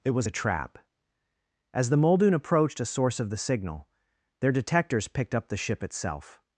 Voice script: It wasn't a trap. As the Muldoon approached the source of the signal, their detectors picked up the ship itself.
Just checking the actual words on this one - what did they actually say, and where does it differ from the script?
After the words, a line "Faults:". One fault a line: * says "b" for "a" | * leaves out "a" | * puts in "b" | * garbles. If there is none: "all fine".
It was a trap. As the Muldoon approached a source of the signal, their detectors picked up the ship itself.
Faults:
* says "was" for "wasn't"
* says "a" for "the"